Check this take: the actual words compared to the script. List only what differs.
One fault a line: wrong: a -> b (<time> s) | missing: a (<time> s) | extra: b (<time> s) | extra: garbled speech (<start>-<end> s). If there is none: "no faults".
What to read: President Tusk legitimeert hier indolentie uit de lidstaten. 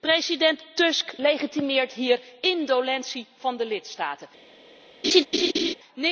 wrong: uit -> van (3.4 s)